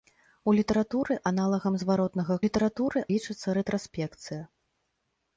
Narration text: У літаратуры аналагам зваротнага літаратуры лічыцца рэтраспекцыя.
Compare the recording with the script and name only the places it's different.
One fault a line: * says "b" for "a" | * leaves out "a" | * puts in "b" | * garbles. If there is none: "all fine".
all fine